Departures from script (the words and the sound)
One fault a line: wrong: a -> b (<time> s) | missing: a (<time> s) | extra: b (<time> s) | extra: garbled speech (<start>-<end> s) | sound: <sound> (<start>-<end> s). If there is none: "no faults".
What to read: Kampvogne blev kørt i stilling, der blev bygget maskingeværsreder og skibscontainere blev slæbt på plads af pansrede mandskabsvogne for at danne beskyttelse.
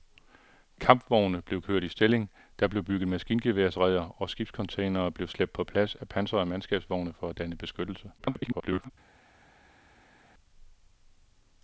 extra: garbled speech (8.2-8.9 s)